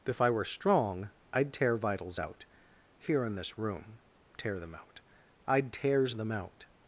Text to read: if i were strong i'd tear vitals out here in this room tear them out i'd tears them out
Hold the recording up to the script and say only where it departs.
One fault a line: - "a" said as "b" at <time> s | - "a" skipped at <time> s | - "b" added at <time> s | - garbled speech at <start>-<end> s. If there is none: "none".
none